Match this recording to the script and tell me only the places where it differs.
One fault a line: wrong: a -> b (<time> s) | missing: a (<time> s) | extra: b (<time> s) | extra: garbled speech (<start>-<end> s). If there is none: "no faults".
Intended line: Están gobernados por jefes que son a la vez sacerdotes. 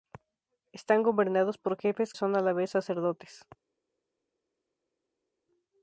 missing: que (2.1 s)